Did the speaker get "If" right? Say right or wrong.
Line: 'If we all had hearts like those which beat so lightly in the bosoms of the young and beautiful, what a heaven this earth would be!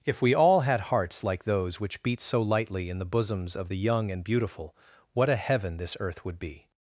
right